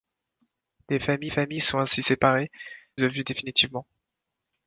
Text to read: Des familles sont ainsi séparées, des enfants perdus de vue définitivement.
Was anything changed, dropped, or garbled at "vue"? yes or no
no